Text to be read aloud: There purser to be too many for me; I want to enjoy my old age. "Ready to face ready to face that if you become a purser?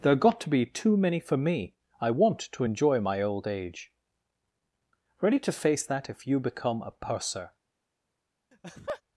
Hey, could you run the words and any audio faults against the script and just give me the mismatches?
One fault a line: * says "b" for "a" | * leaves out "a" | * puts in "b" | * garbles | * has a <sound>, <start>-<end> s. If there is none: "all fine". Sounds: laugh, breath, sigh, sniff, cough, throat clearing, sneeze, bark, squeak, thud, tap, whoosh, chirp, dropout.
* says "got" for "purser"
* leaves out "ready to face"
* has a laugh, 8.5-9.0 s